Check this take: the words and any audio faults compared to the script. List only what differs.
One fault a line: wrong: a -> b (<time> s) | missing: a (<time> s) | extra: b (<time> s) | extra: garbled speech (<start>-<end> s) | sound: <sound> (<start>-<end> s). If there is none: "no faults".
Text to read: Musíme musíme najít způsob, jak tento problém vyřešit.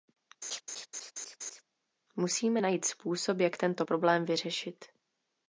sound: laugh (0.4-1.6 s)
missing: musíme (2.6 s)